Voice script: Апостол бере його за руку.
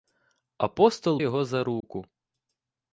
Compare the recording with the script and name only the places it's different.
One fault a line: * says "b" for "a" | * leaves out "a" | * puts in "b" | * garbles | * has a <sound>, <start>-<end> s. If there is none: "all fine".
* leaves out "бере"
* has a dropout, 1.8-1.8 s